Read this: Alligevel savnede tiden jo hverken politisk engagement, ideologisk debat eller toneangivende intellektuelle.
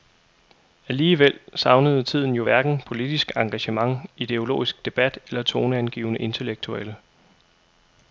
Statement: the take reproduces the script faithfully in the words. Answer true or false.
true